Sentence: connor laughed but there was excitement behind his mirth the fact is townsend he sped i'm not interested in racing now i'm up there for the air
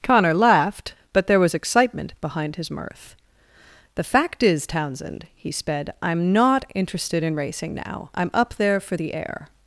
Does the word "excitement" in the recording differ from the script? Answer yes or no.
no